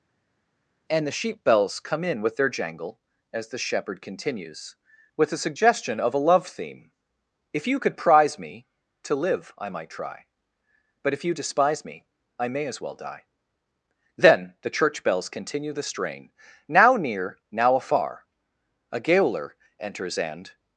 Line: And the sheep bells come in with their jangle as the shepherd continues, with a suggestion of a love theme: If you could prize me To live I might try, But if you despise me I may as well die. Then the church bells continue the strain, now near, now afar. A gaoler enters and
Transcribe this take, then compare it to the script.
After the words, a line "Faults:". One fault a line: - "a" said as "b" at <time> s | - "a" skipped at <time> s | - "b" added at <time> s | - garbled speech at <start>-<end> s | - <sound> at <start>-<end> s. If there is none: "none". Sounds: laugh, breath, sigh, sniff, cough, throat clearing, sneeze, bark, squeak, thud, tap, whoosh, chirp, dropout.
And the sheep bells come in with their jangle as the shepherd continues, with a suggestion of a love theme: If you could prize me To live I might try, But if you despise me I may as well die. Then the church bells continue the strain, now near, now afar. A gaoler enters and
Faults:
none